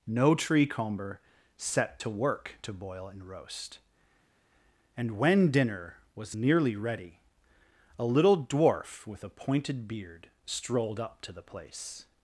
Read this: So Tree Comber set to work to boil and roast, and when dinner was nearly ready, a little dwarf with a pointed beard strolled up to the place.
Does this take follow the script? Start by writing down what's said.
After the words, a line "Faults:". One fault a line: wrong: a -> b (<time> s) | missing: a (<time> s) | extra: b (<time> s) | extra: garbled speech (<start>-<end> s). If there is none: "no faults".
No Tree Comber set to work to boil and roast, and when dinner was nearly ready, a little dwarf with a pointed beard strolled up to the place.
Faults:
wrong: So -> No (0.1 s)